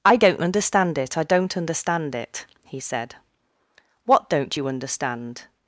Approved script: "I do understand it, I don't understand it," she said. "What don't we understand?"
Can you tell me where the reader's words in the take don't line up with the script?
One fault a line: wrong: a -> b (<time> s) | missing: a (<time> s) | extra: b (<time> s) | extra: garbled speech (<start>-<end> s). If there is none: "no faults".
wrong: do -> don't (0.1 s)
wrong: she -> he (2.6 s)
wrong: we -> you (4.5 s)